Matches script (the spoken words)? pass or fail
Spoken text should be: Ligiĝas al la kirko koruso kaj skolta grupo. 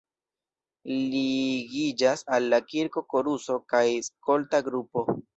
pass